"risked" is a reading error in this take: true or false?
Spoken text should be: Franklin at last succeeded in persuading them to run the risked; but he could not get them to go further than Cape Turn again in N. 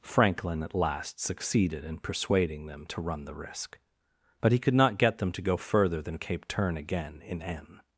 true